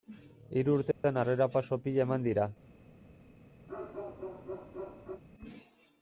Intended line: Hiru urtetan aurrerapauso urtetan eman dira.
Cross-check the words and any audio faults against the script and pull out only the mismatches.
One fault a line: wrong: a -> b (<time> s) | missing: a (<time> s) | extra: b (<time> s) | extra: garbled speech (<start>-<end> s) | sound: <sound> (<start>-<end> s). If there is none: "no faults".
sound: dropout (0.9-1.0 s)
wrong: urtetan -> pila (1.9 s)
sound: bark (3.7-5.2 s)